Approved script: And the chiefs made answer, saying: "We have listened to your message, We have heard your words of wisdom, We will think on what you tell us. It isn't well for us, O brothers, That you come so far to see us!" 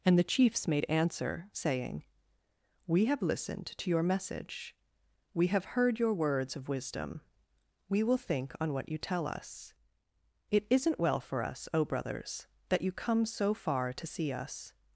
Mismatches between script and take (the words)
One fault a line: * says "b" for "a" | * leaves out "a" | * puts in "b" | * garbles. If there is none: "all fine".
all fine